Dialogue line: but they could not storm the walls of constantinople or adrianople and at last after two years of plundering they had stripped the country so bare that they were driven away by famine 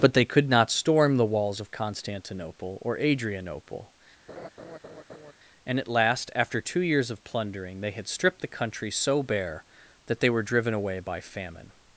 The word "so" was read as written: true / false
true